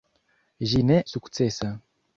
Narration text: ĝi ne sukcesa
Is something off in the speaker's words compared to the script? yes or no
no